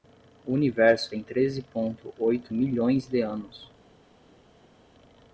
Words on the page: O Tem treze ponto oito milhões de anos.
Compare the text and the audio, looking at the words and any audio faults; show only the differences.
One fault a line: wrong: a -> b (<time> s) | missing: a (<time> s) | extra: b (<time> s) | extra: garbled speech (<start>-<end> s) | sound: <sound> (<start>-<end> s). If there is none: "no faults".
extra: Universo (0.5 s)